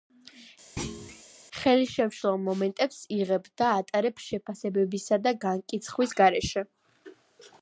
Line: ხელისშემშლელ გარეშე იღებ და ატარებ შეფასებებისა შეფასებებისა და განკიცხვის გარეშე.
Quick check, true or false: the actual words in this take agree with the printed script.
false